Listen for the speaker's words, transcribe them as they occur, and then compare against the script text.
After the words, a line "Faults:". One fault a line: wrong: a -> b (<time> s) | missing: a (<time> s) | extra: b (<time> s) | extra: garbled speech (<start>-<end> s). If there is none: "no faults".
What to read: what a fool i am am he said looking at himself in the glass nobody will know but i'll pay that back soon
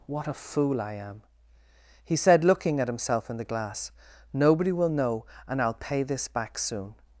what a fool i am he said looking at himself in the glass nobody will know and i'll pay this back soon
Faults:
missing: am (1.2 s)
wrong: but -> and (5.5 s)
wrong: that -> this (6.0 s)